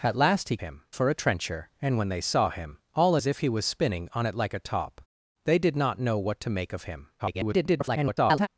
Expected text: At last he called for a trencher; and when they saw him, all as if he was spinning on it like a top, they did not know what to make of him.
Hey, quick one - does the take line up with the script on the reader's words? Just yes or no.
no